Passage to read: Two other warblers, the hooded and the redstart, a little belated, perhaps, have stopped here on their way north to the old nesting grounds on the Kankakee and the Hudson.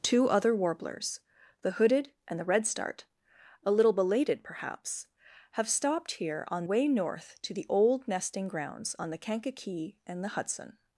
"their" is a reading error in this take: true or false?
true